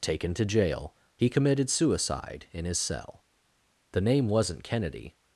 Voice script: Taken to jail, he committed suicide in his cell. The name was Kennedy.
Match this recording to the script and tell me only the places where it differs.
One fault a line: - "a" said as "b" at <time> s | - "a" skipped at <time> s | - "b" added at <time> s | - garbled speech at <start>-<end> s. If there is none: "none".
- "was" said as "wasn't" at 4.3 s